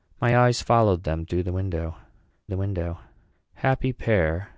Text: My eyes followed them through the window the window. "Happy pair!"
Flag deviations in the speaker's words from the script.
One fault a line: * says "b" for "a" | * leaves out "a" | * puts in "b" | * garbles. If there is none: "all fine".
all fine